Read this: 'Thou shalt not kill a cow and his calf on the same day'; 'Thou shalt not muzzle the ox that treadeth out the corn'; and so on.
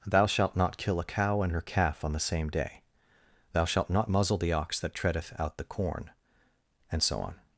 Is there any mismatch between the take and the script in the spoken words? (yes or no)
yes